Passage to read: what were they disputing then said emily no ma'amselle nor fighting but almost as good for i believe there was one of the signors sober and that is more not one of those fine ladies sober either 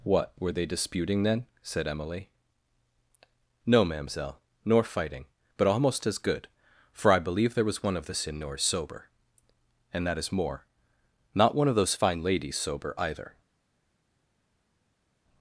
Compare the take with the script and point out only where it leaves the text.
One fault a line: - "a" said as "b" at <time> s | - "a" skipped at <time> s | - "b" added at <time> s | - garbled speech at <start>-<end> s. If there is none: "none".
none